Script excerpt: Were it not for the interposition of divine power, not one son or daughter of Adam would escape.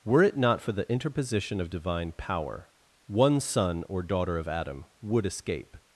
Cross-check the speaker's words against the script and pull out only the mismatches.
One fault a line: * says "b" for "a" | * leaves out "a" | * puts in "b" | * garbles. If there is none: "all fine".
* leaves out "not"